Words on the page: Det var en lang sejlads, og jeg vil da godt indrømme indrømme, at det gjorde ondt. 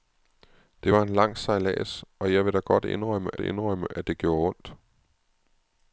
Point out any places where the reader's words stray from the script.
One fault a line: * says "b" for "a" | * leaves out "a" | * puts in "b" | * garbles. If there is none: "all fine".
all fine